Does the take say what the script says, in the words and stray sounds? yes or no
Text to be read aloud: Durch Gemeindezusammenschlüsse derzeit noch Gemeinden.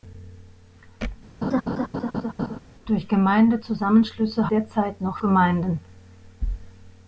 no